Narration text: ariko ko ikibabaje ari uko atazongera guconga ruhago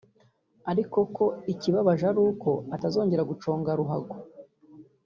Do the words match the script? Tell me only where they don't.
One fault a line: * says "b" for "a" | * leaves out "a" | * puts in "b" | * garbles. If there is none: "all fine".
all fine